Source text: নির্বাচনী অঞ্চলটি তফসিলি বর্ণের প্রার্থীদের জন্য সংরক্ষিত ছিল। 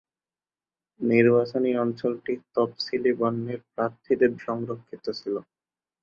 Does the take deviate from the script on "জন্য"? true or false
true